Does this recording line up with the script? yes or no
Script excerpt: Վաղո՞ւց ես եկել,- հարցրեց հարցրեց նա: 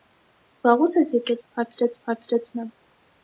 yes